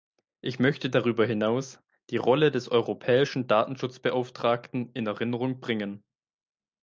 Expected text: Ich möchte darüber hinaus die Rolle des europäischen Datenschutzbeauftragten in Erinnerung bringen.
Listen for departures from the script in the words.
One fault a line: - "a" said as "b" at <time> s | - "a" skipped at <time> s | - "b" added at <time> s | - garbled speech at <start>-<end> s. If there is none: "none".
none